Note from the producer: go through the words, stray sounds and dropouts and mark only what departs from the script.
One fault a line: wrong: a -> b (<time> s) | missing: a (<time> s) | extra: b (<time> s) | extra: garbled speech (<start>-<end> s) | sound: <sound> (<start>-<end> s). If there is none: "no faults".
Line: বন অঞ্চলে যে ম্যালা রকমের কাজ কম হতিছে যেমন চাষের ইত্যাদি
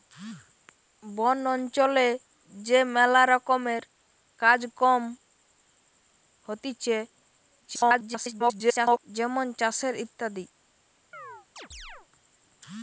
extra: garbled speech (7.6-9.0 s)
sound: chirp (11.1-12.1 s)